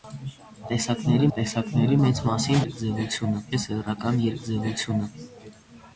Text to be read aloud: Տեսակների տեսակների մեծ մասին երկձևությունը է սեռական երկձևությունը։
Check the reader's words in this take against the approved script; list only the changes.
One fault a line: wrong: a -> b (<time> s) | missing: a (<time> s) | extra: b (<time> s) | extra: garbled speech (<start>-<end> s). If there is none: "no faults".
no faults